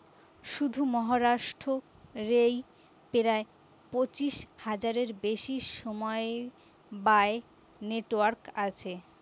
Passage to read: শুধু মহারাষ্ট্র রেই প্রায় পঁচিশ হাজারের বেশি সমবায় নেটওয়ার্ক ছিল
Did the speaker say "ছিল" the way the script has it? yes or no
no